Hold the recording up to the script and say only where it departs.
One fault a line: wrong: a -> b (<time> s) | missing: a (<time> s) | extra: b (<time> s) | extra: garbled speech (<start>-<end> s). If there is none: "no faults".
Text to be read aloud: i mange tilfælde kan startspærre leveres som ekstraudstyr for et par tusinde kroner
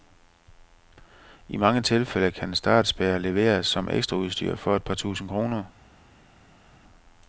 no faults